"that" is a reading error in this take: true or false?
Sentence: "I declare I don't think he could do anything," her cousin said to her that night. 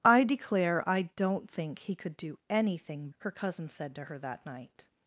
false